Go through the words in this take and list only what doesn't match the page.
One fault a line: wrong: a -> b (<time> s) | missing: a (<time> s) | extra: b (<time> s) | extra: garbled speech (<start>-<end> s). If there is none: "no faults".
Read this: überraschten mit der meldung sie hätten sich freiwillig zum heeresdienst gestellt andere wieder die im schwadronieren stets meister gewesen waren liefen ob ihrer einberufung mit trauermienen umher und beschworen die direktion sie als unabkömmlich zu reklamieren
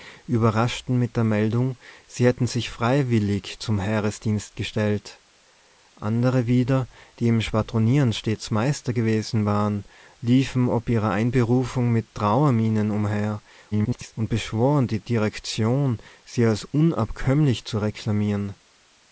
extra: garbled speech (13.7-14.1 s)